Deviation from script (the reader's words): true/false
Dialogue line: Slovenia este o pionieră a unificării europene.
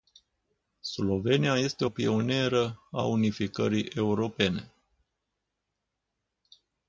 false